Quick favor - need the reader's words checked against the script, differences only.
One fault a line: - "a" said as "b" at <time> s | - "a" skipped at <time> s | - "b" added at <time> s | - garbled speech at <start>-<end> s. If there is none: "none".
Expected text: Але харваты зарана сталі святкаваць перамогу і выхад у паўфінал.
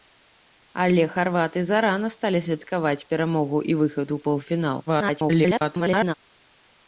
- garbled speech at 4.9-6.1 s